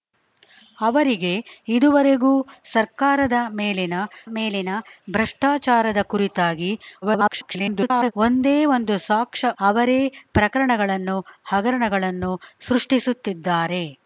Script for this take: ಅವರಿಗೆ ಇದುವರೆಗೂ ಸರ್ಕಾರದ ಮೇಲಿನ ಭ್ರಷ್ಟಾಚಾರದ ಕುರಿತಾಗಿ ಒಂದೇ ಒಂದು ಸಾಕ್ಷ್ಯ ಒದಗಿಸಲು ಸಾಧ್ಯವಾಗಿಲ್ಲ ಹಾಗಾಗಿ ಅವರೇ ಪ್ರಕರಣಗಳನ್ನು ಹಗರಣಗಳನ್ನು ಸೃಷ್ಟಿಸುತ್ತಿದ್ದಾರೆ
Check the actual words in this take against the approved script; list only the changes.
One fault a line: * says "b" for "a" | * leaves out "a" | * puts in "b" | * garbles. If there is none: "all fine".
* puts in "ಮೇಲಿನ"
* garbles
* leaves out "ಒದಗಿಸಲು ಸಾಧ್ಯವಾಗಿಲ್ಲ ಹಾಗಾಗಿ"